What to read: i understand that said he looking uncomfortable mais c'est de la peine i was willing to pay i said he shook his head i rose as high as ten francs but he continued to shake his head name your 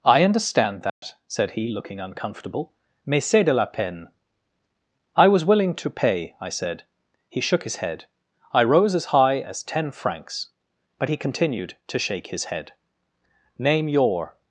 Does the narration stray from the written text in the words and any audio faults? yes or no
yes